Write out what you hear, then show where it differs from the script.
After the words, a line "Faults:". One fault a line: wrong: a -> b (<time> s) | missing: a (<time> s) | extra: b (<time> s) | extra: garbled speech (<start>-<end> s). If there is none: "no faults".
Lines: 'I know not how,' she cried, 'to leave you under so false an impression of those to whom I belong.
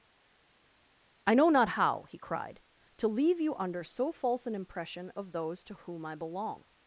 'I know not how,' he cried, 'to leave you under so false an impression of those to whom I belong.
Faults:
wrong: she -> he (2.1 s)